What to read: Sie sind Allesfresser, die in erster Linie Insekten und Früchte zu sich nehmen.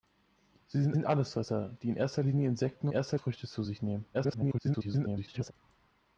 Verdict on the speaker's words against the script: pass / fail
fail